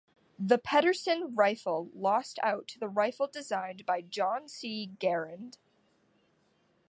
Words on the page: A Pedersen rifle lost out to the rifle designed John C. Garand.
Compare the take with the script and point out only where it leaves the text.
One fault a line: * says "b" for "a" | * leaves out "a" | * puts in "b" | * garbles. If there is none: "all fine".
* says "The" for "A"
* puts in "by"